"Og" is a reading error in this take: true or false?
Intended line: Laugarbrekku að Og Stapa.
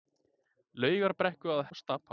false